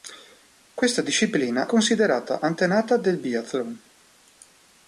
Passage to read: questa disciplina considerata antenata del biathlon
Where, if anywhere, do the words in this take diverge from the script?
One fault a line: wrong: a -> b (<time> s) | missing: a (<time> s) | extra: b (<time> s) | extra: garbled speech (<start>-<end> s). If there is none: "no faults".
no faults